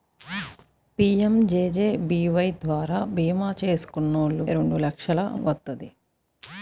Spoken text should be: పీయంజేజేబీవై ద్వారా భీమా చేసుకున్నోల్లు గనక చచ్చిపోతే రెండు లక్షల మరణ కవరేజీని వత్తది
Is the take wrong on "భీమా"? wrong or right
right